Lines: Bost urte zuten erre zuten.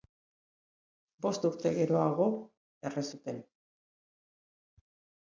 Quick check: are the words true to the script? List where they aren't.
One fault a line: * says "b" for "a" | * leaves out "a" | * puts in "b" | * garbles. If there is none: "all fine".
* says "geroago" for "zuten"